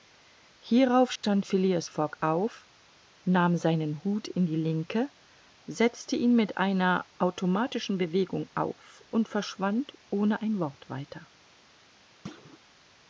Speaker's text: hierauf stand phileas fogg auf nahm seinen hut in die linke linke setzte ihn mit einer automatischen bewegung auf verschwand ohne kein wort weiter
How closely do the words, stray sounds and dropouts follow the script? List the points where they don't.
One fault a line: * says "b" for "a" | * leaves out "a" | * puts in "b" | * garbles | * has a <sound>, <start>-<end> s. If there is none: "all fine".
* has a dropout, 1.2-1.2 s
* leaves out "linke"
* puts in "und"
* says "ein" for "kein"
* has a thud, 12.2-12.6 s